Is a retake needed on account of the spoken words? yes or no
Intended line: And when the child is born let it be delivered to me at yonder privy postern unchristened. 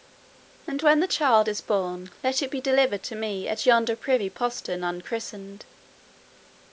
no